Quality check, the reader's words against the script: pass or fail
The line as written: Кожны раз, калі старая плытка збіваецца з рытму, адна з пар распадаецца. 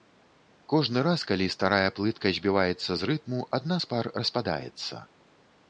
pass